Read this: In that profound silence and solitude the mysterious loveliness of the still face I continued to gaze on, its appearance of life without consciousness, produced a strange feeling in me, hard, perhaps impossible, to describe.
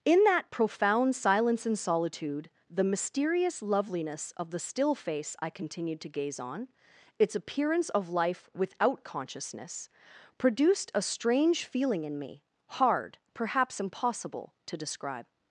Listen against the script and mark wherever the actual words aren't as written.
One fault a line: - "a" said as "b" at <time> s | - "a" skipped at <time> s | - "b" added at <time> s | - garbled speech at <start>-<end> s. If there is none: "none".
none